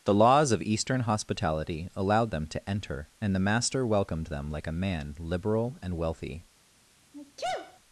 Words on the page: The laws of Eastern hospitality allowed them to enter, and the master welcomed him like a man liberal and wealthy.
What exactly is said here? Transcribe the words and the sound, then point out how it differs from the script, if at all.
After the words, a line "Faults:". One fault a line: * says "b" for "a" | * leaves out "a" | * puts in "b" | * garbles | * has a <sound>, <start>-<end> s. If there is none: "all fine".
The laws of Eastern hospitality allowed them to enter, and the master welcomed them like a man liberal and wealthy.
Faults:
* says "them" for "him"
* has a sneeze, 7.1-7.8 s